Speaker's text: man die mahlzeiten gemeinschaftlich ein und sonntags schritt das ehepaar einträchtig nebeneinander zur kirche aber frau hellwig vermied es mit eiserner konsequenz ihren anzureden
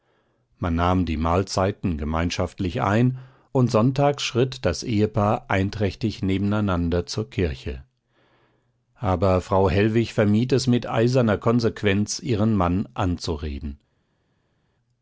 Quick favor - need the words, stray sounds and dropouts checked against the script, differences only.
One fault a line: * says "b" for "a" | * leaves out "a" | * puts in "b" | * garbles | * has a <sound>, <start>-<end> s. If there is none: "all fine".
* puts in "nahm"
* puts in "mann"